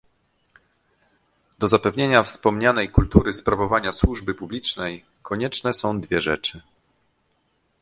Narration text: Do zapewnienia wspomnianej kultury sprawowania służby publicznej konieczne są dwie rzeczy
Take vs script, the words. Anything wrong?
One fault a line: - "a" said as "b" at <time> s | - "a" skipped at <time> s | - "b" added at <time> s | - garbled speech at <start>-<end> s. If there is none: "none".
none